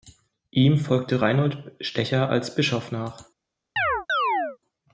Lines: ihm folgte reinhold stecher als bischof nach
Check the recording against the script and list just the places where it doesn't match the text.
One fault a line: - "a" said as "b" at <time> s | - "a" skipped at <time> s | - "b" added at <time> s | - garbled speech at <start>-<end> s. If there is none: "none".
none